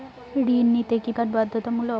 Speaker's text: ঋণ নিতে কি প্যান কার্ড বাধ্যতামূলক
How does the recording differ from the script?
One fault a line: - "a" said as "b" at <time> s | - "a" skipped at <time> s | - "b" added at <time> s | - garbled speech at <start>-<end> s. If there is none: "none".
- "প্যান" skipped at 1.1 s